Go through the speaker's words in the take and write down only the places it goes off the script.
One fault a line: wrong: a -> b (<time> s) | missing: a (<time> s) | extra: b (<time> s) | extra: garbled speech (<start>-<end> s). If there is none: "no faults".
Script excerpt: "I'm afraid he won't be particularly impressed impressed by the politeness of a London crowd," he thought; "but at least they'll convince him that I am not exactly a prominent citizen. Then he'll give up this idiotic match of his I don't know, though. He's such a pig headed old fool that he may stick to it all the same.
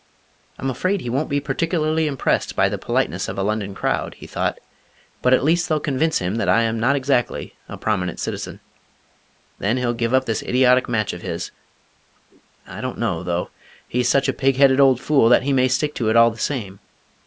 missing: impressed (2.5 s)